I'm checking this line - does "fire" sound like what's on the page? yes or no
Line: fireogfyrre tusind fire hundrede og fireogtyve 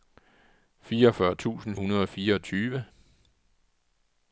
no